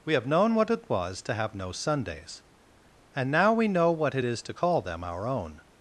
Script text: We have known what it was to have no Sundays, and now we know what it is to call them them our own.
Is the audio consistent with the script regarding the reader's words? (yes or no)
no